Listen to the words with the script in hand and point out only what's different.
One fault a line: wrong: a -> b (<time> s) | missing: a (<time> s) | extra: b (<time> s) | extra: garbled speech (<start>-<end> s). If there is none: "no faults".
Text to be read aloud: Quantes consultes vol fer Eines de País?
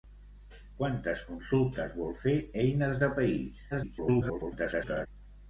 extra: garbled speech (3.7-5.1 s)